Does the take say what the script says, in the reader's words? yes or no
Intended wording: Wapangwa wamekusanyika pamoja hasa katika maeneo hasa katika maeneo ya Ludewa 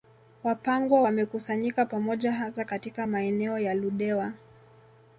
no